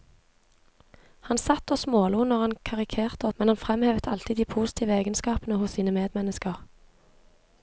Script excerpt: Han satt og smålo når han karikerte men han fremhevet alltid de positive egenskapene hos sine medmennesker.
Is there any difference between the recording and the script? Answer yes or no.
no